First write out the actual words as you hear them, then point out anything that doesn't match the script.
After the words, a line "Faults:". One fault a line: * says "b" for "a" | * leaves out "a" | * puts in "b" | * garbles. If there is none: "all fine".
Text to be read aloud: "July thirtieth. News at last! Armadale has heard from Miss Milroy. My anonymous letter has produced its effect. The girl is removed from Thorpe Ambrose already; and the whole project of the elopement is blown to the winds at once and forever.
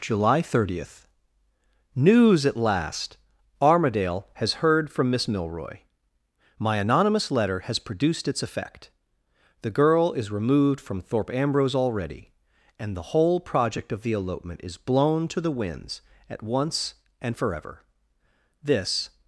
"July thirtieth. News at last! Armadale has heard from Miss Milroy. My anonymous letter has produced its effect. The girl is removed from Thorpe Ambrose already; and the whole project of the elopement is blown to the winds at once and forever. This
Faults:
* puts in "This"